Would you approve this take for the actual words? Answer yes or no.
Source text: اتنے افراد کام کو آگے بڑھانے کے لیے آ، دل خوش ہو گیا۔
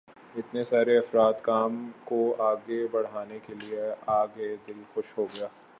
no